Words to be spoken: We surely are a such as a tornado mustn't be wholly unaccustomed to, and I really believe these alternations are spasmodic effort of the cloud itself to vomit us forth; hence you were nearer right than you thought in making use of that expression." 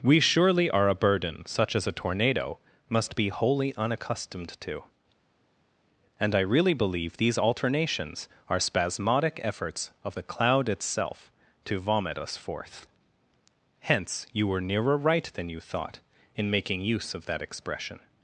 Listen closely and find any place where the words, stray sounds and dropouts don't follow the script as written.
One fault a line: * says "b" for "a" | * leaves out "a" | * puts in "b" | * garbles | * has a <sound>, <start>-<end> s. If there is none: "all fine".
* puts in "burden"
* says "must" for "mustn't"
* says "efforts" for "effort"